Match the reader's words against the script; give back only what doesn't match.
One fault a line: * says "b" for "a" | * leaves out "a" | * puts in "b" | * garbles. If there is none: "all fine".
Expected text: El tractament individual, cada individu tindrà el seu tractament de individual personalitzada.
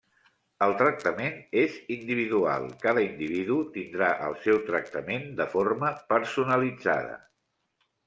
* puts in "és"
* says "forma" for "individual"